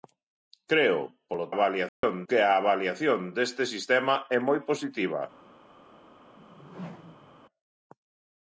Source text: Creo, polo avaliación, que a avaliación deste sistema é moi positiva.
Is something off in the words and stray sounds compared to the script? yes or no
yes